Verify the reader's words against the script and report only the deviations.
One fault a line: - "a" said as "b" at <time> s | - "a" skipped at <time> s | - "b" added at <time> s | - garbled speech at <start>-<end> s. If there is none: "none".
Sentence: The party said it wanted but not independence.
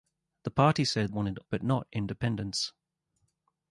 none